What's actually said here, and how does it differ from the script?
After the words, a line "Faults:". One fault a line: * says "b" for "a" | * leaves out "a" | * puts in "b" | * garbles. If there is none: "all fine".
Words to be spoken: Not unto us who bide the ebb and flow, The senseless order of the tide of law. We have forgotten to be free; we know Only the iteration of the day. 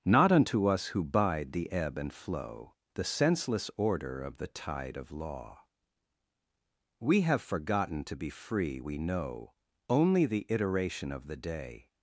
Not unto us who bide the ebb and flow, The senseless order of the tide of law. We have forgotten to be free; we know Only the iteration of the day.
Faults:
all fine